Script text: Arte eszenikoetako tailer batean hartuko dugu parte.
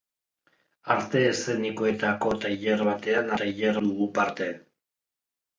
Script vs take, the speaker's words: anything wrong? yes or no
yes